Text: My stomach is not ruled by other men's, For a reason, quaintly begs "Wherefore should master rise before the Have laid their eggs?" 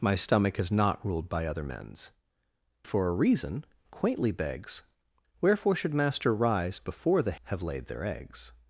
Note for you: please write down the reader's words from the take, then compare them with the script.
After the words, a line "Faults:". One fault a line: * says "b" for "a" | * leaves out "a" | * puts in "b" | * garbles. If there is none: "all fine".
My stomach is not ruled by other men's, For a reason, quaintly begs "Wherefore should master rise before the Have laid their eggs?"
Faults:
all fine